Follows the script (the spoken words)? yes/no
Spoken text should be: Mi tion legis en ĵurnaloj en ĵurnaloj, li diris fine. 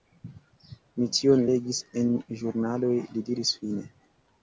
no